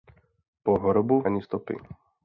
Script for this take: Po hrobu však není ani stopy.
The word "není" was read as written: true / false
false